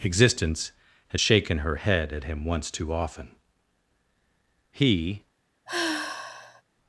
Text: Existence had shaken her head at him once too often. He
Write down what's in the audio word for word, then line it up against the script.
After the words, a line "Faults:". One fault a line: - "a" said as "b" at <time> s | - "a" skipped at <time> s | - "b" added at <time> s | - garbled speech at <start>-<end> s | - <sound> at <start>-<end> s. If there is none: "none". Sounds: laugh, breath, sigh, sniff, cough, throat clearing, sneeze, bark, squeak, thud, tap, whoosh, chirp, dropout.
Existence had shaken her head at him once too often. He
Faults:
- sigh at 5.7-6.6 s